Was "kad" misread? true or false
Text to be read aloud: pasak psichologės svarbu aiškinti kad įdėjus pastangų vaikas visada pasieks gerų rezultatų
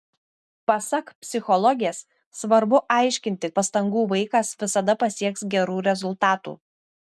true